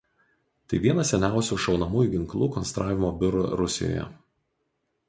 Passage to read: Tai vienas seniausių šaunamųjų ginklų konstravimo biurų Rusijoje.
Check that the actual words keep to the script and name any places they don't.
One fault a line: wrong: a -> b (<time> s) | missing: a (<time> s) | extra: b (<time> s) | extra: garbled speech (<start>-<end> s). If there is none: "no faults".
no faults